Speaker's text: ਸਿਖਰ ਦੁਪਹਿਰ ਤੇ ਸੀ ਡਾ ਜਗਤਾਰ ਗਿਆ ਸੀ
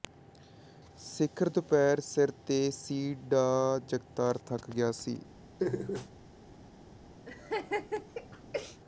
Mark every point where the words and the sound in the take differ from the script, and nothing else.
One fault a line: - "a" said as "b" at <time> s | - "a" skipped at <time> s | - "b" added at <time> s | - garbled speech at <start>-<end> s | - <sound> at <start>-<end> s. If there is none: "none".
- "ਸਿਰ" added at 2.0 s
- "ਥੱਕ" added at 4.5 s
- laugh at 5.6-6.1 s
- laugh at 7.3-8.8 s